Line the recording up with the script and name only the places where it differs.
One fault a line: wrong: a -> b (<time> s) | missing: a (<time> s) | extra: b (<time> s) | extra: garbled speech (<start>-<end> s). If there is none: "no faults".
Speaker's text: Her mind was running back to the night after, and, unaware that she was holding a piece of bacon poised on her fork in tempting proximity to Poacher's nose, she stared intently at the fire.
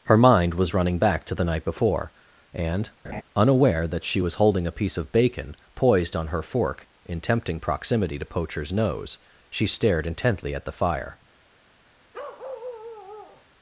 wrong: after -> before (1.6 s)